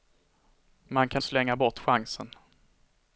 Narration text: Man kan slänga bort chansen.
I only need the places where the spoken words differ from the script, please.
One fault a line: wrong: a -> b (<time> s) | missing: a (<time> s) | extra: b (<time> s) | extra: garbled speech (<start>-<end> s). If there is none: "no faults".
no faults